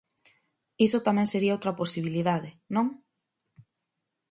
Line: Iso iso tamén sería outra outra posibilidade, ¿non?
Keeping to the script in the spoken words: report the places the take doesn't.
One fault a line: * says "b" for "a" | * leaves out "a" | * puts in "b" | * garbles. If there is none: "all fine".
* leaves out "iso"
* leaves out "outra"